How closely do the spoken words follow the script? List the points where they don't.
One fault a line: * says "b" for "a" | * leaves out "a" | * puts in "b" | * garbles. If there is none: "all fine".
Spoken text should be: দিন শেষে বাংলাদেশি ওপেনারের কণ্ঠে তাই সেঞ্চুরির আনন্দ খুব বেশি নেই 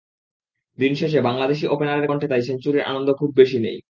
all fine